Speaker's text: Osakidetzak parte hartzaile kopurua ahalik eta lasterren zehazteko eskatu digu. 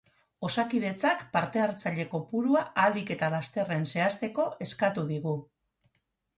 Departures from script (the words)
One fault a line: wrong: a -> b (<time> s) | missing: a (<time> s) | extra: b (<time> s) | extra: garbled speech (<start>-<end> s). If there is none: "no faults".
no faults